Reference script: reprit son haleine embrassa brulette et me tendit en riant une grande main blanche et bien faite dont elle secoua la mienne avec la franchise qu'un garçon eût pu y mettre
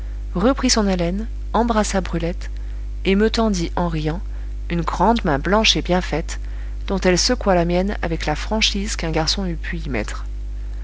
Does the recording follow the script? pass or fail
pass